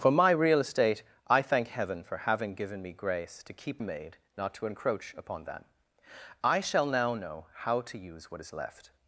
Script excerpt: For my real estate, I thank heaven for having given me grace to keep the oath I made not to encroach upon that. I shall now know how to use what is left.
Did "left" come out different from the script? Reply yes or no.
no